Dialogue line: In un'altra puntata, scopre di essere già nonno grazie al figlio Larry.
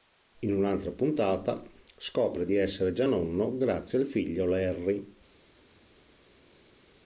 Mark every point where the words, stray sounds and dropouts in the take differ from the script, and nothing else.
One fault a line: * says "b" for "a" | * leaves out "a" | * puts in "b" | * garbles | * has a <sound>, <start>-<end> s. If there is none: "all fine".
all fine